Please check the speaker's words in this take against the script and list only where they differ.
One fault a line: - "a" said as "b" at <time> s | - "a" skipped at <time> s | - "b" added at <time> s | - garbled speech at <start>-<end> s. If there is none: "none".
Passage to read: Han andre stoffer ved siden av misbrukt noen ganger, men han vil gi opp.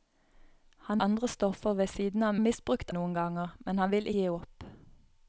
none